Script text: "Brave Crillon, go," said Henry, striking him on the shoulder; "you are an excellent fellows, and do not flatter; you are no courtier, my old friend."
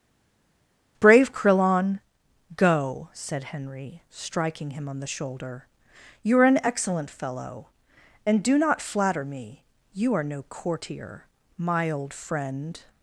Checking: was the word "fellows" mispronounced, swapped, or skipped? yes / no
yes